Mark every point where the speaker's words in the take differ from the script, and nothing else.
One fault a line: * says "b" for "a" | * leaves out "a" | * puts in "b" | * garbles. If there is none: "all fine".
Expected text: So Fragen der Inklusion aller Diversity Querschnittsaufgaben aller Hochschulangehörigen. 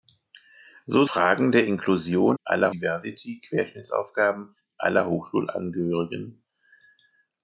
all fine